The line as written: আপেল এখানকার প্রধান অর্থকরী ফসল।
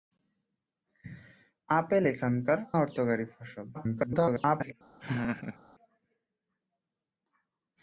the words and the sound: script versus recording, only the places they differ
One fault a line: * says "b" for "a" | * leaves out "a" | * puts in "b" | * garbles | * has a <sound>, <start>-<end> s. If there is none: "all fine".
* leaves out "প্রধান"
* garbles
* has a laugh, 5.0-5.6 s